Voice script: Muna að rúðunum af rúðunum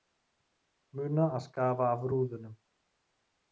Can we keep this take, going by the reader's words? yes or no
no